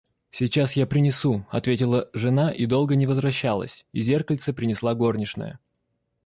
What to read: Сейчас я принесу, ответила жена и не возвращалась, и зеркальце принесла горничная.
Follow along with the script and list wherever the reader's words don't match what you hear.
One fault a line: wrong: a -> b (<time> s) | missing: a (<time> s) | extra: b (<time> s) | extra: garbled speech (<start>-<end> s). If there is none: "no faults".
extra: долго (2.6 s)